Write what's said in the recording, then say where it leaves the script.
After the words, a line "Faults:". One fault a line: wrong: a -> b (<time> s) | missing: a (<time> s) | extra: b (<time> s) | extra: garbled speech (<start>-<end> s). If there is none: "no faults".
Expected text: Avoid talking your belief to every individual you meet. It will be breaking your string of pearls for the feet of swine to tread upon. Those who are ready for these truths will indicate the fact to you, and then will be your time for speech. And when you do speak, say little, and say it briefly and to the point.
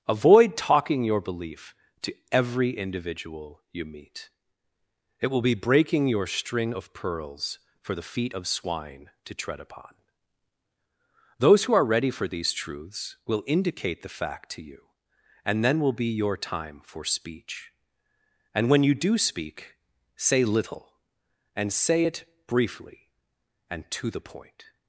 Avoid talking your belief to every individual you meet. It will be breaking your string of pearls for the feet of swine to tread upon. Those who are ready for these truths will indicate the fact to you, and then will be your time for speech. And when you do speak, say little, and say it briefly and to the point.
Faults:
no faults